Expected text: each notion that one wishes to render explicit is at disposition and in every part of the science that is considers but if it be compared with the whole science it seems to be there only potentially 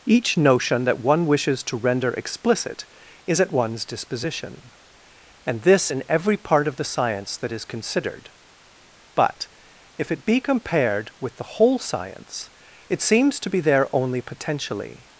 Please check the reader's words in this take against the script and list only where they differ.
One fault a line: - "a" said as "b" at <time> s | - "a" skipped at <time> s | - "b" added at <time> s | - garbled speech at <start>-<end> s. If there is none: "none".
- "one's" added at 3.5 s
- "this" added at 5.6 s
- "considers" said as "considered" at 7.6 s